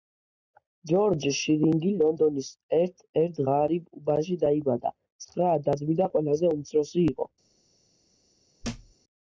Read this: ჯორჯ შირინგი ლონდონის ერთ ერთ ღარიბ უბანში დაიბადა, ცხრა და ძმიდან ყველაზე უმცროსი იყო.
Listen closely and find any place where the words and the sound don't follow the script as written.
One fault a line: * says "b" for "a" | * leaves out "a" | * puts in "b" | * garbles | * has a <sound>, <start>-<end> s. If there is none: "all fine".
* has a thud, 8.6-8.9 s